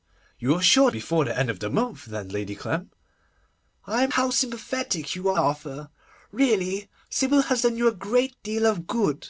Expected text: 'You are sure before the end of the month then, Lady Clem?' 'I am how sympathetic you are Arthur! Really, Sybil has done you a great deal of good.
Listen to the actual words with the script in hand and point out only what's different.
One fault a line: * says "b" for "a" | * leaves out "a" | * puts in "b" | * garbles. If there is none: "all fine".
all fine